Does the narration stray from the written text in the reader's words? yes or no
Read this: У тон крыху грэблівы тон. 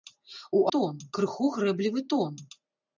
no